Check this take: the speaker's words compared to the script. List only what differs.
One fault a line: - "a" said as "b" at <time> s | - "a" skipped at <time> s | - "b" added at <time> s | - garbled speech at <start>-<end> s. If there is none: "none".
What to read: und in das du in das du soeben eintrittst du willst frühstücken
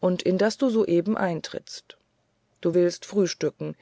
- "in das du" skipped at 0.7 s